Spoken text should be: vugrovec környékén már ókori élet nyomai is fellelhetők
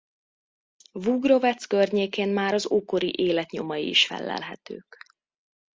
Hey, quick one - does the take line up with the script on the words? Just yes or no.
no